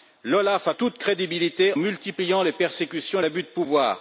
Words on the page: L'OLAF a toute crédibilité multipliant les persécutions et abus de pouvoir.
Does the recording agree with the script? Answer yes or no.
yes